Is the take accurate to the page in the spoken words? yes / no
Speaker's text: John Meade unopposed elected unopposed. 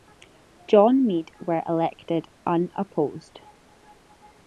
no